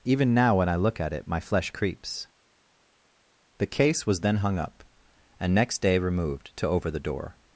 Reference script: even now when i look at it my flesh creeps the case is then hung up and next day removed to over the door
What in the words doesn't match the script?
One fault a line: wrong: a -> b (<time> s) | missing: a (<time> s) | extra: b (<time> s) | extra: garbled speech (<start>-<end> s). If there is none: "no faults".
wrong: is -> was (4.1 s)